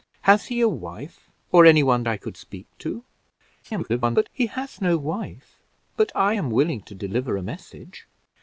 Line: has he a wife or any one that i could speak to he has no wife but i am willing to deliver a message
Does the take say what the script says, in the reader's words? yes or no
no